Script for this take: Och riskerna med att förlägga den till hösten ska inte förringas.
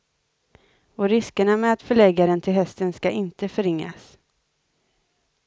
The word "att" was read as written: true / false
true